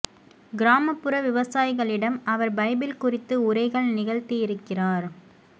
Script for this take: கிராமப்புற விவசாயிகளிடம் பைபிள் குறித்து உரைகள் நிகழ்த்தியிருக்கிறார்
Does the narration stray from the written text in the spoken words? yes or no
yes